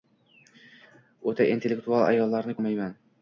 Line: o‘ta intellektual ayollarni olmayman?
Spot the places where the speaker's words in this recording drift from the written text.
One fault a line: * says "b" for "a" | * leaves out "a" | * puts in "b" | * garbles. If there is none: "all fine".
all fine